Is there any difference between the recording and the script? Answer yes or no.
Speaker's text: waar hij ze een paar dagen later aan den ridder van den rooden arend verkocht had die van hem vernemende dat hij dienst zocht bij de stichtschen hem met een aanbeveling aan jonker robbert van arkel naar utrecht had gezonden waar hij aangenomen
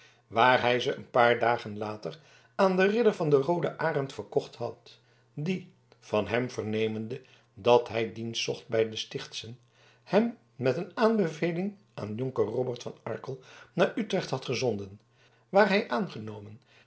no